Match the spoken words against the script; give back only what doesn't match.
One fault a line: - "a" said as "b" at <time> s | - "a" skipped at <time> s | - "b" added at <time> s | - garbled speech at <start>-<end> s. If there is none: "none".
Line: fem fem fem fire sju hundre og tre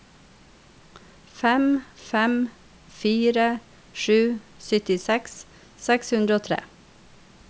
- "fem" skipped at 2.3 s
- "syttiseks seks" added at 4.7 s